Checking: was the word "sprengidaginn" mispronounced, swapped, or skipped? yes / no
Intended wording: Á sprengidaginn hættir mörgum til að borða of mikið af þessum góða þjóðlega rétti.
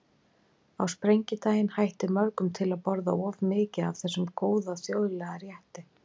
no